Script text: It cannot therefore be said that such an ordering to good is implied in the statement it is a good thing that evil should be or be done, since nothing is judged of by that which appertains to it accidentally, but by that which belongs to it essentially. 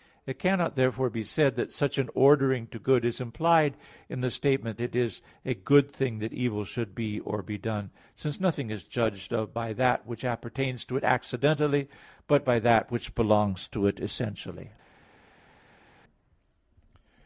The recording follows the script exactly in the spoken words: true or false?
true